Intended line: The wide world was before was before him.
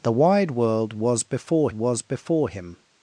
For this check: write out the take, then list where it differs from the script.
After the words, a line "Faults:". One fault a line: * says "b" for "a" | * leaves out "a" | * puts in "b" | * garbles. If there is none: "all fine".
The wide world was before was before him.
Faults:
all fine